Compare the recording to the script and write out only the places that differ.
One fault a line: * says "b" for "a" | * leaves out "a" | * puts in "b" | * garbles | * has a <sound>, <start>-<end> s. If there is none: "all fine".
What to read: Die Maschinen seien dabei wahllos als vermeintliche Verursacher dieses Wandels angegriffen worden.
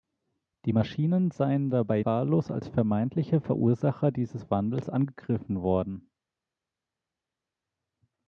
all fine